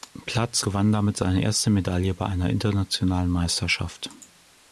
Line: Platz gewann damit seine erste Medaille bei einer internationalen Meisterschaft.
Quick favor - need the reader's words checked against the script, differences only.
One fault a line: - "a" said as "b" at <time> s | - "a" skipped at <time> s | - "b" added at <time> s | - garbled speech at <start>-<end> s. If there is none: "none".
none